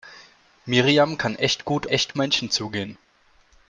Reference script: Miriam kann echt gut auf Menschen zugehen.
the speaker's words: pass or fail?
fail